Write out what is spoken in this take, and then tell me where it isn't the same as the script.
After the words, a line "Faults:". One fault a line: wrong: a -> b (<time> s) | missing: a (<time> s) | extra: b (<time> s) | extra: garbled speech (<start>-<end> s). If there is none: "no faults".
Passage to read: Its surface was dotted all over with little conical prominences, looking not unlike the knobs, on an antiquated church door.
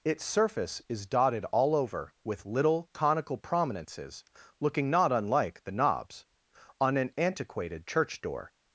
Its surface is dotted all over with little conical prominences, looking not unlike the knobs, on an antiquated church door.
Faults:
wrong: was -> is (0.9 s)